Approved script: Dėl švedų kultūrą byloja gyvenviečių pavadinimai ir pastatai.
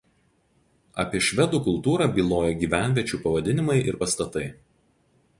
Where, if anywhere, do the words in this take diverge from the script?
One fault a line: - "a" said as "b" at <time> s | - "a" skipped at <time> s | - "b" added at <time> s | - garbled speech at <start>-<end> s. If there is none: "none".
- "Dėl" said as "Apie" at 1.0 s